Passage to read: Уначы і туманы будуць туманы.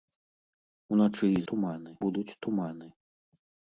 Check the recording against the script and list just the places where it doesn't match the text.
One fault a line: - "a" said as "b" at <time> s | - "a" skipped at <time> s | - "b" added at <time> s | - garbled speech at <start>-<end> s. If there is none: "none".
none